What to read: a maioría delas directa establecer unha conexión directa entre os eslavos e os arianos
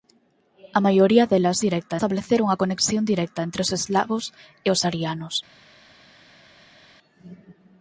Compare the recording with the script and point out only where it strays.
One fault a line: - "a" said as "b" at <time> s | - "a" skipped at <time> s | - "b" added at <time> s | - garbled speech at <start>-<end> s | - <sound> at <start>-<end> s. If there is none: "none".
none